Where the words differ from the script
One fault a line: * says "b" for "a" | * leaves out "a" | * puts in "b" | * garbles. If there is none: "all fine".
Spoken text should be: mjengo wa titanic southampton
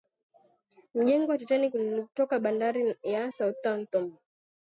* puts in "ulitoka bandari ya"